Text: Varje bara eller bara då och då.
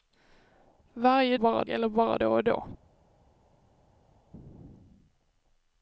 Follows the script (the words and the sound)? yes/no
yes